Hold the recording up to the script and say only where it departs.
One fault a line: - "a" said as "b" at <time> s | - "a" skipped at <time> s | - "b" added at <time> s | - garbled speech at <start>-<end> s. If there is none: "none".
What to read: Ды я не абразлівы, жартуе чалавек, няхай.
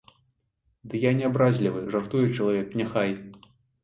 none